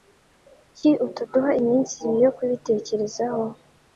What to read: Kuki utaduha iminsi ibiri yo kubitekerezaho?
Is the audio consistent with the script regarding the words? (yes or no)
yes